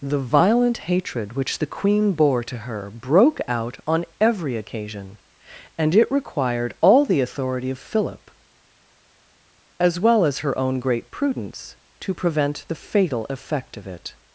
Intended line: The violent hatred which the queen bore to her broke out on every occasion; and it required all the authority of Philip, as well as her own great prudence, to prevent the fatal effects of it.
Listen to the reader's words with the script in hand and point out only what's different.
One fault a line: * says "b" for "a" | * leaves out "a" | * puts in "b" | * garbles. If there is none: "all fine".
* says "effect" for "effects"